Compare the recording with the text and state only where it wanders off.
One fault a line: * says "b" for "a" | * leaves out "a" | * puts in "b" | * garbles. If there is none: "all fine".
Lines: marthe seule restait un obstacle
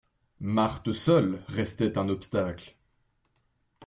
all fine